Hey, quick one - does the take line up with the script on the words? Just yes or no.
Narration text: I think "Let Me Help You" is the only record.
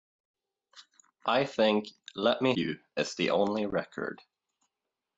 no